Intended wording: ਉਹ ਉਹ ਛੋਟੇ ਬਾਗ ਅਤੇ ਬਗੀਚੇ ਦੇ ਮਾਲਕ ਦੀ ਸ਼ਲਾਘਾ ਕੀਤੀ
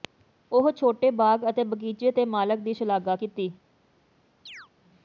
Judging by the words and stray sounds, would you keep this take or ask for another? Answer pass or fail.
fail